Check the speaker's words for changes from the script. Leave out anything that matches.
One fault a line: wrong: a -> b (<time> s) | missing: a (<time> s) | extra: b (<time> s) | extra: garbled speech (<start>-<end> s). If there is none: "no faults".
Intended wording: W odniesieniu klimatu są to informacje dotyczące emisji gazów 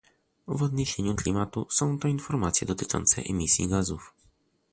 no faults